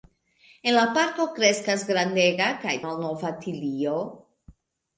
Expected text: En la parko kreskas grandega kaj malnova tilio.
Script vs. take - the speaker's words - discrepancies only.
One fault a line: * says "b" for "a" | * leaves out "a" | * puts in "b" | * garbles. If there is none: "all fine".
all fine